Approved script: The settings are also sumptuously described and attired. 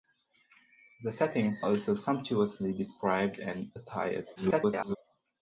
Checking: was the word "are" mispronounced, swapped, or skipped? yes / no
yes